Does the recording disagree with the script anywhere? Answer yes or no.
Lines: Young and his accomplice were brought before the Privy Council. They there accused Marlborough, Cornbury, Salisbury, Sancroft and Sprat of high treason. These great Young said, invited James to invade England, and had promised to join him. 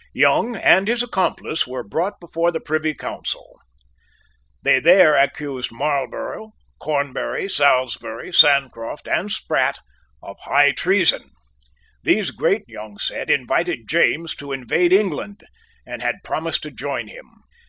no